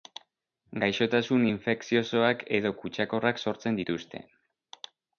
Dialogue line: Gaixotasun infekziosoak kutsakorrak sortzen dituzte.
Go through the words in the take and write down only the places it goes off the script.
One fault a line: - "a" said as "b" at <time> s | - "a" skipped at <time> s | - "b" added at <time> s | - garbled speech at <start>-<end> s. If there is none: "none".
- "edo" added at 2.6 s